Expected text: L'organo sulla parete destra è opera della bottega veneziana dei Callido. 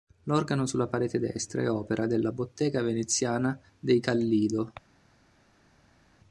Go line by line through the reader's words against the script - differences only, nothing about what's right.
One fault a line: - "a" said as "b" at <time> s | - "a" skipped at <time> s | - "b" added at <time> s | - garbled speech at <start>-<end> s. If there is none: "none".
none